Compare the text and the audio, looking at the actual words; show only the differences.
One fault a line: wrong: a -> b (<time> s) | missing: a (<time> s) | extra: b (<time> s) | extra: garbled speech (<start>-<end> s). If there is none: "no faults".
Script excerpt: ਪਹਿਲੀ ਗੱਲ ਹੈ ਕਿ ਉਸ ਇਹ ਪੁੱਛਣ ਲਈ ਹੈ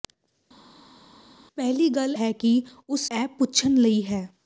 no faults